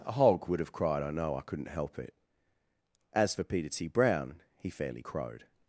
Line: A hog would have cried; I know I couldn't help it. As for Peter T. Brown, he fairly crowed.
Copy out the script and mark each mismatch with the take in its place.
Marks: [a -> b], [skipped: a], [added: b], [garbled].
A hog would have cried; I know I couldn't help it. As for Peter T. Brown, he fairly crowed.